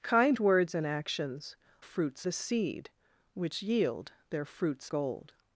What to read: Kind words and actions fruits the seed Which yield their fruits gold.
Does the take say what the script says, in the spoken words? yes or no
yes